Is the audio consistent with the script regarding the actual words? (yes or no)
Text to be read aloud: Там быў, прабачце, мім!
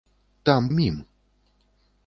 no